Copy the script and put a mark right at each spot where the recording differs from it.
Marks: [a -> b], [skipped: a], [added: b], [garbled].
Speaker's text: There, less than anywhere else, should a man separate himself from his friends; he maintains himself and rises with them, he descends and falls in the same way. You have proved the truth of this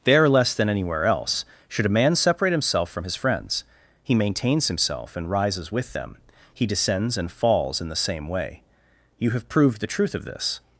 There, less than anywhere else, should a man separate himself from his friends; he maintains himself and rises with them, he descends and falls in the same way. You have proved the truth of this